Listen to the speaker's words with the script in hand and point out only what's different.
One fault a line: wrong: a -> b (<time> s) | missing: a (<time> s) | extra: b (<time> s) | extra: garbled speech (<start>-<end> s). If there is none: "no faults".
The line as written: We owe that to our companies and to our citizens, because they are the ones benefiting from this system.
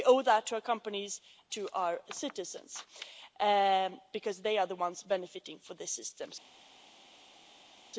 missing: and (1.2 s)